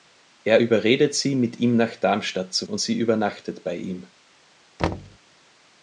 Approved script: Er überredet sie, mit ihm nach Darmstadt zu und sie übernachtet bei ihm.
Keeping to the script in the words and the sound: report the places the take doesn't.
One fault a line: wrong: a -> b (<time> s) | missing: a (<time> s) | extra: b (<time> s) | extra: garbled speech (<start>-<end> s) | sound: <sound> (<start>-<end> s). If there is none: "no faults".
sound: thud (4.8-5.2 s)